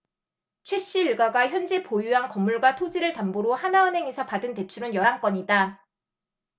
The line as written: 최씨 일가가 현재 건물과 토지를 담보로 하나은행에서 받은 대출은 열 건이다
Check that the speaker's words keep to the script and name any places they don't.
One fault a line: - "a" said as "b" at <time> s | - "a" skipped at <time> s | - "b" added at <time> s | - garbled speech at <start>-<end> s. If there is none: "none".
- "보유한" added at 1.8 s
- "한" added at 5.0 s